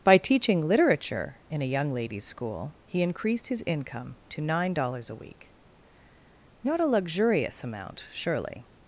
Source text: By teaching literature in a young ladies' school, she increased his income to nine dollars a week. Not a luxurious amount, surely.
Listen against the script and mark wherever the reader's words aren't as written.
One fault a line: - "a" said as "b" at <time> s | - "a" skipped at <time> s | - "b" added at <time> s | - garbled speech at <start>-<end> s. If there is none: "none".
- "she" said as "he" at 2.8 s